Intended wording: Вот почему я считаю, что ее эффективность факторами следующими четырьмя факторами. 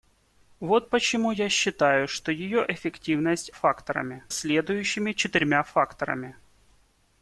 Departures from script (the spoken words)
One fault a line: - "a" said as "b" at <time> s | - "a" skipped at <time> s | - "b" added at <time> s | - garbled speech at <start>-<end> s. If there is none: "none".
none